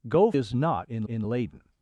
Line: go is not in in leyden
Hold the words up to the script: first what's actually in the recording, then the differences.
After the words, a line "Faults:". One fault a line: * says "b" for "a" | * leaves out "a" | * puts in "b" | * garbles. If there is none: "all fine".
go is not in in leyden
Faults:
all fine